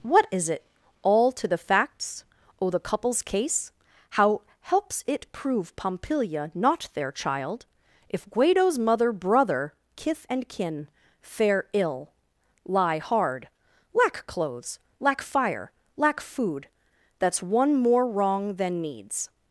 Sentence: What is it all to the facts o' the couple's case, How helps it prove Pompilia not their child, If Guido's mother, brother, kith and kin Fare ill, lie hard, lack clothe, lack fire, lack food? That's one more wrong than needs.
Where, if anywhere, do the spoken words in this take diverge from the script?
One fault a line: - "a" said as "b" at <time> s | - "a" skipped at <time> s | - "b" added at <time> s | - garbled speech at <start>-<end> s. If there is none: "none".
- "clothe" said as "clothes" at 14.3 s